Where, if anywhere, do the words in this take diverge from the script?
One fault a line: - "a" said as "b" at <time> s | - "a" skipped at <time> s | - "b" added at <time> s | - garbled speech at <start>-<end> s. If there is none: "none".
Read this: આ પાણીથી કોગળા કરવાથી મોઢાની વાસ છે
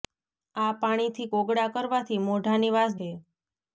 none